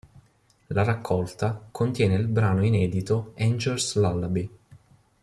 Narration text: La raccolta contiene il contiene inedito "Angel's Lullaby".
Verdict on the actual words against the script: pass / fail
fail